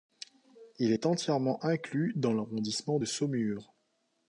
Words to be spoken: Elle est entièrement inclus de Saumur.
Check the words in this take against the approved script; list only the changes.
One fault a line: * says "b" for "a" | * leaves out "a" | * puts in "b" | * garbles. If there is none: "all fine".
* says "Il" for "Elle"
* puts in "dans l'arrondissement"